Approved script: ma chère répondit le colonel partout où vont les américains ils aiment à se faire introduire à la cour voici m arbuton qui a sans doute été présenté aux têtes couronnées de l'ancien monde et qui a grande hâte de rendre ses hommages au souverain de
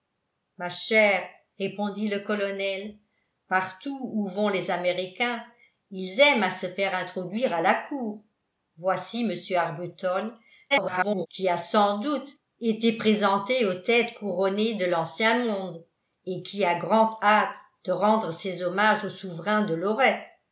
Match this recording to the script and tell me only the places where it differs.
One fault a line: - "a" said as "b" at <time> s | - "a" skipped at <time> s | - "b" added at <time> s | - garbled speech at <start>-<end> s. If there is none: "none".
- garbled speech at 10.7-11.3 s